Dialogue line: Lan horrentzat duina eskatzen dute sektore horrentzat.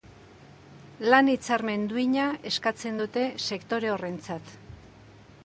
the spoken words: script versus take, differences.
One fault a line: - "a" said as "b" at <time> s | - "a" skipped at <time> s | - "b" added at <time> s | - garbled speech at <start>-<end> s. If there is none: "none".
- "horrentzat" said as "hitzarmen" at 1.3 s